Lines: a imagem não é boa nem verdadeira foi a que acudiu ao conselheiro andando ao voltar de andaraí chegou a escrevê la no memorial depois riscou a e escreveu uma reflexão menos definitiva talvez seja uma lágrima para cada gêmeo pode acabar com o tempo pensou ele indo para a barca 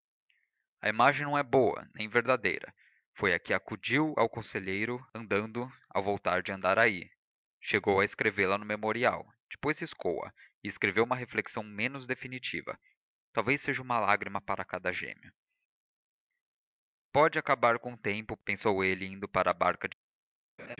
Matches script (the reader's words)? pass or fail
pass